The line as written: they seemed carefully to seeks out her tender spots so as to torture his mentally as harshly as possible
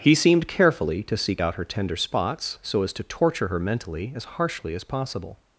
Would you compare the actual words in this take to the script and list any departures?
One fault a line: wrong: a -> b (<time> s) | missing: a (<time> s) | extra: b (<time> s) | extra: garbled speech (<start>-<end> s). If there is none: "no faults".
wrong: they -> he (0.0 s)
wrong: seeks -> seek (1.1 s)
wrong: his -> her (3.5 s)